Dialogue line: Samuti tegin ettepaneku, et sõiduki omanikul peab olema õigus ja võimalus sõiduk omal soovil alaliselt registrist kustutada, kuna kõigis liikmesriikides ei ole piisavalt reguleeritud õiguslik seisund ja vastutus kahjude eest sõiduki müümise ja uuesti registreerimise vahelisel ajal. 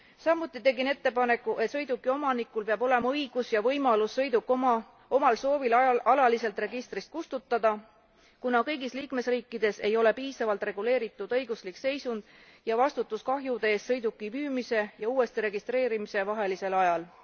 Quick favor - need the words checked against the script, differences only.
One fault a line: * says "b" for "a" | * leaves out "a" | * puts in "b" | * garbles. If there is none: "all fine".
all fine